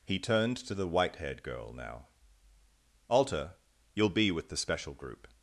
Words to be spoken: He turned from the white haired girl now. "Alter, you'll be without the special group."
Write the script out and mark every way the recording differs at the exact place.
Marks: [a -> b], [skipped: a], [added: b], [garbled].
He turned [from -> to] the white haired girl now. "Alter, you'll be [without -> with] the special group."